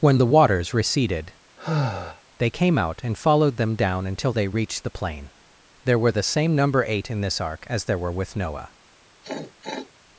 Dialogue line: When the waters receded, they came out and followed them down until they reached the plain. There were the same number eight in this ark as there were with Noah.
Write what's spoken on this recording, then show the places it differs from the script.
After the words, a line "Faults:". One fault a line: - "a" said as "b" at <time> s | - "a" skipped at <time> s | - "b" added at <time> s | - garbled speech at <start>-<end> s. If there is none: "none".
When the waters receded, they came out and followed them down until they reached the plain. There were the same number eight in this ark as there were with Noah.
Faults:
none